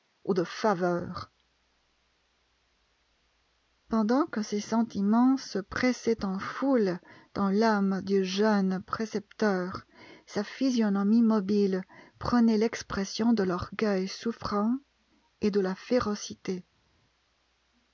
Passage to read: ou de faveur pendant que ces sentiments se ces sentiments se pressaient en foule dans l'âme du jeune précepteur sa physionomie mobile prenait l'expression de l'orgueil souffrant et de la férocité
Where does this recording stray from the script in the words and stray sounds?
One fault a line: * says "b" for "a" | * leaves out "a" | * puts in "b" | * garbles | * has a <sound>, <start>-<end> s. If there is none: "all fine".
* leaves out "ces sentiments se"